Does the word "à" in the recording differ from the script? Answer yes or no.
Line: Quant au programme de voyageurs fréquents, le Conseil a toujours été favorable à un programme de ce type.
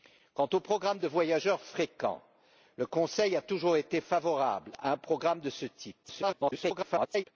no